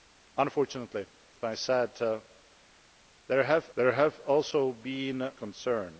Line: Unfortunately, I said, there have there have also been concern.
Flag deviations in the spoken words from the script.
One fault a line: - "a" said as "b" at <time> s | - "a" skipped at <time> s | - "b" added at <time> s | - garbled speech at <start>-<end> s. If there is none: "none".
none